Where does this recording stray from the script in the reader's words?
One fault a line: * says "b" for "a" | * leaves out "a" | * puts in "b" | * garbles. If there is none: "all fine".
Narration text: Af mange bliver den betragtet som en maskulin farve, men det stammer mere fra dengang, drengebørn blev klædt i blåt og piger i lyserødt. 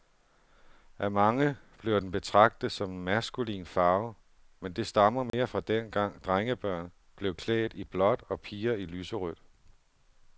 all fine